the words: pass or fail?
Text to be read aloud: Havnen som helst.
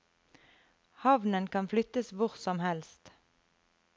fail